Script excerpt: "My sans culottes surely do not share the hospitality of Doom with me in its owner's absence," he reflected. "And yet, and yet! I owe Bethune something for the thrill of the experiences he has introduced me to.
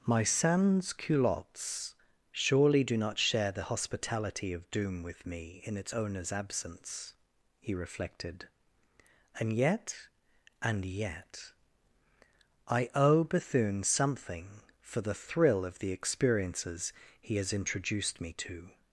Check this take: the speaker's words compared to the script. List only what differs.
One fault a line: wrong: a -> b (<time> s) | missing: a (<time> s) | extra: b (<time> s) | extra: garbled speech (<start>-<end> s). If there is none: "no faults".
no faults